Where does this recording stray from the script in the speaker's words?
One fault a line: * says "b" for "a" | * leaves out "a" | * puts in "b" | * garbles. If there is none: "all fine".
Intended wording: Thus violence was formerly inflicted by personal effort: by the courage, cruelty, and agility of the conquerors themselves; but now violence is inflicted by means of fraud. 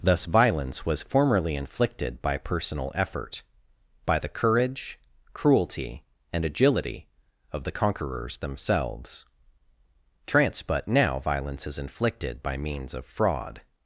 * puts in "trance"